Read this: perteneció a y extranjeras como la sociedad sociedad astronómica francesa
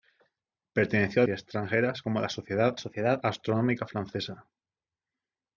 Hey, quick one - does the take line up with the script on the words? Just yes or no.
yes